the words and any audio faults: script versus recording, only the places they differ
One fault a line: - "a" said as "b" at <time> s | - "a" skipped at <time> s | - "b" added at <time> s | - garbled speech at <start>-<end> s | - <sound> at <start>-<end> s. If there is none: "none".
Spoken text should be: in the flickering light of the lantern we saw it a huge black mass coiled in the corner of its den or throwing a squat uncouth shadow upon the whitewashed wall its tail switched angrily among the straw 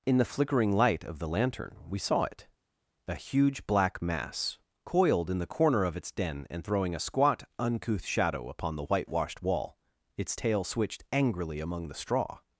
- "or" said as "and" at 6.5 s